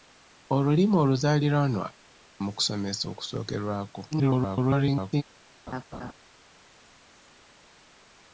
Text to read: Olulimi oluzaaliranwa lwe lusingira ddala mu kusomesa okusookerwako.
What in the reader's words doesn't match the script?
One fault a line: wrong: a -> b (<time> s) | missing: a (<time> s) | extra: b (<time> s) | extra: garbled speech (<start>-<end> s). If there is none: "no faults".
missing: lwe lusingira ddala (1.9 s)
extra: garbled speech (4.1-5.2 s)